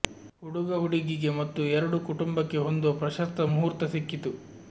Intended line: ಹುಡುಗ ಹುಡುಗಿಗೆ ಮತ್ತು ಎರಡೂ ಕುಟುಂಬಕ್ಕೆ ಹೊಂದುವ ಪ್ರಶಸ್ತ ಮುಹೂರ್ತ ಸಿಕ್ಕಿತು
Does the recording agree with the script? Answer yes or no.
yes